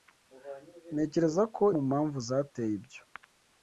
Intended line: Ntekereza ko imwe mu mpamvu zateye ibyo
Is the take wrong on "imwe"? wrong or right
wrong